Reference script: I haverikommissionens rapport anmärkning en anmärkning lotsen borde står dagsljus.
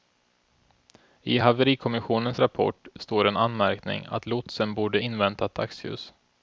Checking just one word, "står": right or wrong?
wrong